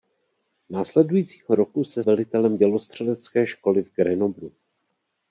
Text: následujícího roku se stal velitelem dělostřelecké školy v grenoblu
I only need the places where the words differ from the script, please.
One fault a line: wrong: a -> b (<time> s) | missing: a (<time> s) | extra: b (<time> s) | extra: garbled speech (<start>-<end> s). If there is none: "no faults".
missing: stal (2.0 s)